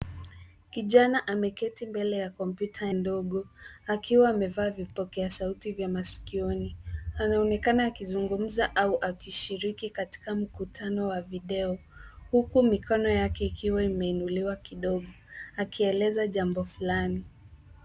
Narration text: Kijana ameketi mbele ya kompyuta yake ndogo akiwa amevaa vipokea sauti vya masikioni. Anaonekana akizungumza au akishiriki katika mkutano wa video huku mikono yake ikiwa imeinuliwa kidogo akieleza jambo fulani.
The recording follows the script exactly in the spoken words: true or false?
false